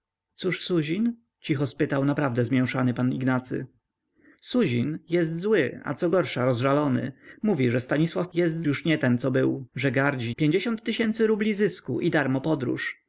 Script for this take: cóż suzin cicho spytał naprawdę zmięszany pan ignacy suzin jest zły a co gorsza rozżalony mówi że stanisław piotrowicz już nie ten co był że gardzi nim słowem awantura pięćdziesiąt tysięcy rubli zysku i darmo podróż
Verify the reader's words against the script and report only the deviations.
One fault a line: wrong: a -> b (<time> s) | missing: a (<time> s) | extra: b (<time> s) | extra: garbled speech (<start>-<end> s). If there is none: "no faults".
wrong: piotrowicz -> jest (8.3 s)
missing: nim słowem awantura (10.3 s)